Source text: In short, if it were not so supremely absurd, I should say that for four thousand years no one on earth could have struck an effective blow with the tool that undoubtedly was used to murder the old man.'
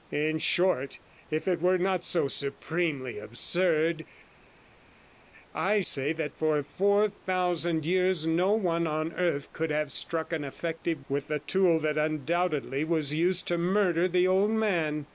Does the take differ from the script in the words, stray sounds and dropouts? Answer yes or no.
yes